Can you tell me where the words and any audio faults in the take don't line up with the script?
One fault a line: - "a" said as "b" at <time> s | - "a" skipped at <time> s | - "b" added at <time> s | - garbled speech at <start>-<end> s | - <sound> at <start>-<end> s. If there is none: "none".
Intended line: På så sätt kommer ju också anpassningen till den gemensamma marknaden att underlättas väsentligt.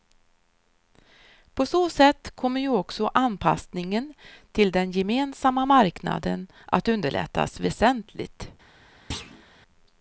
- thud at 9.1-9.4 s